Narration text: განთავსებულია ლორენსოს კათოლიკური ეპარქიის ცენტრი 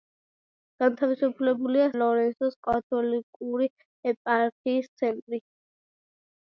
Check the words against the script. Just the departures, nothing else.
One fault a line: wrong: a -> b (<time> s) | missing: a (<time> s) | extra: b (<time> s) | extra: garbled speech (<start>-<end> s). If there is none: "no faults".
no faults